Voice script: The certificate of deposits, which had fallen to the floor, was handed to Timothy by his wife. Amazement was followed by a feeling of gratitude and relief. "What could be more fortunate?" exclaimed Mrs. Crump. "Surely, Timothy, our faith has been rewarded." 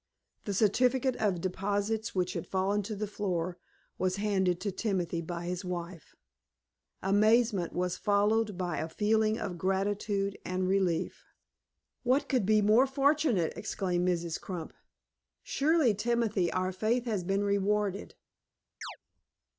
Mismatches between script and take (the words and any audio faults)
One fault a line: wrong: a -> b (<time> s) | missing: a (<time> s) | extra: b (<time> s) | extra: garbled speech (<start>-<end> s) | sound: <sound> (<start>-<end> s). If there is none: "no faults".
sound: chirp (18.8-19.0 s)